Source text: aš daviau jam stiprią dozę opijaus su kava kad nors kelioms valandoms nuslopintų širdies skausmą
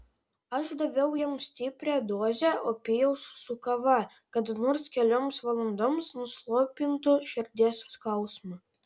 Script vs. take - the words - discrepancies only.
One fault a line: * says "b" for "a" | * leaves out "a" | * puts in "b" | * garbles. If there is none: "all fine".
all fine